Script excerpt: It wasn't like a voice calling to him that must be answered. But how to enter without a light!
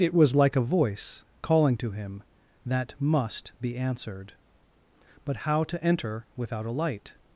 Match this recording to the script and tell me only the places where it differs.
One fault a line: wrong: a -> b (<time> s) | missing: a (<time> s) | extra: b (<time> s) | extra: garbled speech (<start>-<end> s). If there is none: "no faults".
wrong: wasn't -> was (0.1 s)